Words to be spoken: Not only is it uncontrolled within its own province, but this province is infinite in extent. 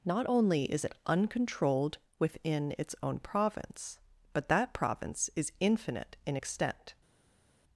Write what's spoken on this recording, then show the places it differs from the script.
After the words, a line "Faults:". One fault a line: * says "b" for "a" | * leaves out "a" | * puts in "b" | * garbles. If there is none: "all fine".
Not only is it uncontrolled within its own province, but that province is infinite in extent.
Faults:
* says "that" for "this"